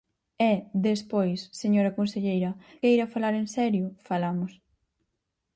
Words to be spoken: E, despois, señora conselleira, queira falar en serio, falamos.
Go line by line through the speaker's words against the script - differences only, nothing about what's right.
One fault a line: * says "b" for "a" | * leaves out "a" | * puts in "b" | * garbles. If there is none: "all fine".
all fine